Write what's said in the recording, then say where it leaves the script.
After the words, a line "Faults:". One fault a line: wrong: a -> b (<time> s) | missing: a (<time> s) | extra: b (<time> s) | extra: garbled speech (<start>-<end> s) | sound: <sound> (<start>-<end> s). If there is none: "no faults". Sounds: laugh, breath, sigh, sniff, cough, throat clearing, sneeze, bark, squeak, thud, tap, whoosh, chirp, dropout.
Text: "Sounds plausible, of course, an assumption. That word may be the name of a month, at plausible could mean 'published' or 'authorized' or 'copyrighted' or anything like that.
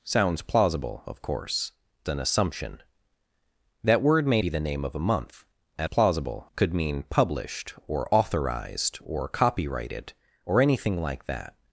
"Sounds plausible, of course, an assumption. That word may be the name of a month, at plausible could mean 'published' or 'authorized' or 'copyrighted' or anything like that.
Faults:
no faults